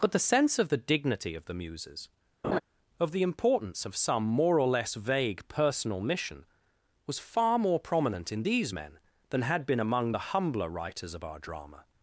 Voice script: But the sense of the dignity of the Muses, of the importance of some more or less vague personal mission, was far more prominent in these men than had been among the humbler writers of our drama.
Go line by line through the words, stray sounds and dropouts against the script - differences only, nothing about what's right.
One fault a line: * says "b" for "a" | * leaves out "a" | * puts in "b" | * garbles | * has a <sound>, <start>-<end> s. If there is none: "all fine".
* has a laugh, 2.4-2.6 s